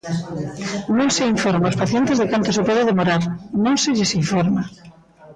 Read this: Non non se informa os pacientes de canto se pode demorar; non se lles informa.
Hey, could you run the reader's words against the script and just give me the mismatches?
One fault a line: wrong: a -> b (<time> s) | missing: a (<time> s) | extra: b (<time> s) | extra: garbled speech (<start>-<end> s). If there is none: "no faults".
missing: non (1.1 s)